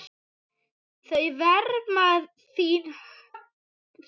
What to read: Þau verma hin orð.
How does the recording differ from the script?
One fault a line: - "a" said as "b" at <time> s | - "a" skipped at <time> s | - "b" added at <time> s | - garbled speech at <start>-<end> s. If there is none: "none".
none